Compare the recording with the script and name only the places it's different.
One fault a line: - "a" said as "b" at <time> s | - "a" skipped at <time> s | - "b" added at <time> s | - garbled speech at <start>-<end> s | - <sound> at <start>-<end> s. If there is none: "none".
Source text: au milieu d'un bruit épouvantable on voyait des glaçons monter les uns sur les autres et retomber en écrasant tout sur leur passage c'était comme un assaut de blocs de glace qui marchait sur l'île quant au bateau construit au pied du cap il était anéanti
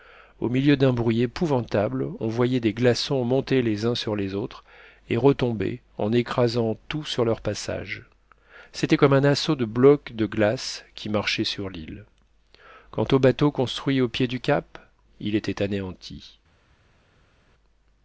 none